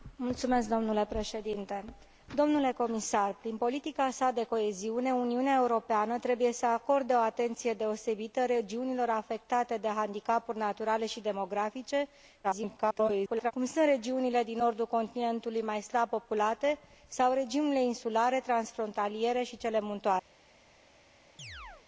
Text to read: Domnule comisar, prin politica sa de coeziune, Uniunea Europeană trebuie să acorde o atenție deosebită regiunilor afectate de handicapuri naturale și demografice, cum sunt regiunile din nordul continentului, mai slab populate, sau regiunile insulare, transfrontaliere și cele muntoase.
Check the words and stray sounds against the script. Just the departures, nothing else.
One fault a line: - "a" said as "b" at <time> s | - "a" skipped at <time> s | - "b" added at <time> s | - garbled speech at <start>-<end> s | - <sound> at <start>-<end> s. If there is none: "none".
- garbled speech at 12.4-13.5 s
- chirp at 21.4-21.9 s